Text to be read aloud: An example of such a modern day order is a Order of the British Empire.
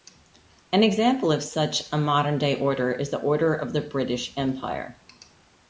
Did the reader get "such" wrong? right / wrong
right